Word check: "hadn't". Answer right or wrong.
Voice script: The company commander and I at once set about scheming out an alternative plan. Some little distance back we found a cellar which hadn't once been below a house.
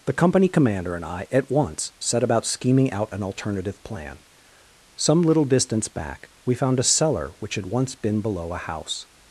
wrong